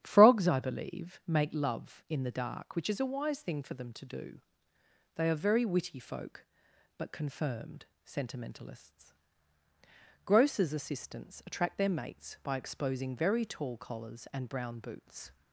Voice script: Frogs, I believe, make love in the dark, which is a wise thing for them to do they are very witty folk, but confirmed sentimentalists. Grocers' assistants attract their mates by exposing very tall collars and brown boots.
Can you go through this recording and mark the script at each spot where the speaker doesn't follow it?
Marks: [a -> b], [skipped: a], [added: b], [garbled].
Frogs, I believe, make love in the dark, which is a wise thing for them to do they are very witty folk, but confirmed sentimentalists. Grocers' assistants attract their mates by exposing very tall collars and brown boots.